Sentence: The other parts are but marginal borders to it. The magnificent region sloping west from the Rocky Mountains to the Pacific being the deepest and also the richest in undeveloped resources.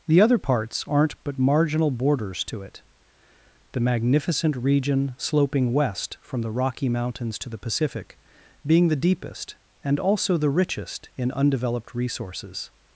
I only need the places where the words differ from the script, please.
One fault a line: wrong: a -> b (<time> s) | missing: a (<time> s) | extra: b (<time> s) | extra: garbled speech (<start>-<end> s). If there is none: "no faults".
wrong: are -> aren't (0.9 s)